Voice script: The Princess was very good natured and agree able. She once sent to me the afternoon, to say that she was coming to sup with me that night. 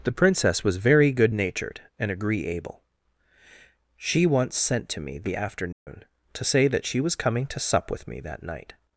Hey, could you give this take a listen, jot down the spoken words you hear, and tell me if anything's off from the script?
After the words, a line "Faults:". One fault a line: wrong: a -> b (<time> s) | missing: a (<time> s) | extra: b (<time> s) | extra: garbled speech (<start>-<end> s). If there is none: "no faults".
The Princess was very good natured and agree able. She once sent to me the afternoon, to say that she was coming to sup with me that night.
Faults:
no faults